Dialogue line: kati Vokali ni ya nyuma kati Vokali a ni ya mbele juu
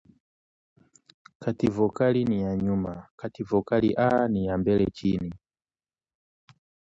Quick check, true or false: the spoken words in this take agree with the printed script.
false